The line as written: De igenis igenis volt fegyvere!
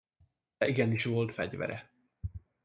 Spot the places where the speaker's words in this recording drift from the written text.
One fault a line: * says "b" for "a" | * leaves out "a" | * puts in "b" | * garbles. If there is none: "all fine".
* leaves out "igenis"